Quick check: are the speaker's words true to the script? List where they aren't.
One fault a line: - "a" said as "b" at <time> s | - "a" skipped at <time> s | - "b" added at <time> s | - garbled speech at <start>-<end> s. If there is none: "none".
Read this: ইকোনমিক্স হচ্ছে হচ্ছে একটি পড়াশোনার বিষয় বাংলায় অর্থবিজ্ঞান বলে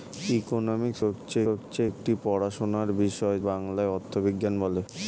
none